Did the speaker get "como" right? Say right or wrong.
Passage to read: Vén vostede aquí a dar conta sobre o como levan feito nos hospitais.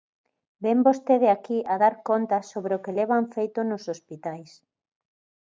wrong